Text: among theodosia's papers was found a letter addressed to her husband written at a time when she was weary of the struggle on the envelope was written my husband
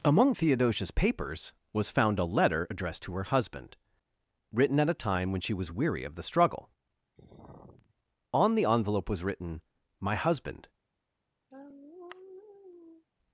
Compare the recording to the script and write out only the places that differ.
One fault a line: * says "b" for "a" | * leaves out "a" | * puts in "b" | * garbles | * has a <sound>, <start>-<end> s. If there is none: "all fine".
* has a sigh, 7.2-7.9 s
* has a sigh, 11.5-13.1 s